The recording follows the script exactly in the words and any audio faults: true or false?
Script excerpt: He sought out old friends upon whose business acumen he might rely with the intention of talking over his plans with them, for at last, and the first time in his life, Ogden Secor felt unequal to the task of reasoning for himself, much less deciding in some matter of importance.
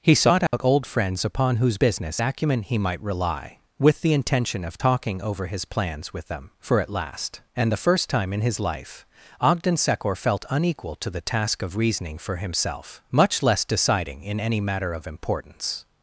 false